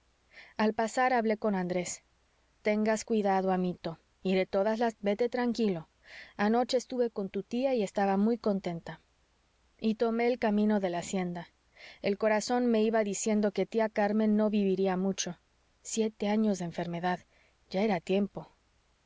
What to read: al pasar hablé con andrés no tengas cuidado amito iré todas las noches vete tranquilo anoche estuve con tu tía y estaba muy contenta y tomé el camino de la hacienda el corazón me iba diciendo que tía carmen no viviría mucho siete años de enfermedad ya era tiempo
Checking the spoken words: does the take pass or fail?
fail